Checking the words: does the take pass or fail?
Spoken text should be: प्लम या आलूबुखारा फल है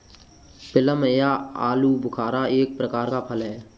fail